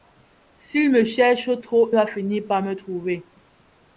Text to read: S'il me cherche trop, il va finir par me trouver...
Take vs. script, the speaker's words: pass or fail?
fail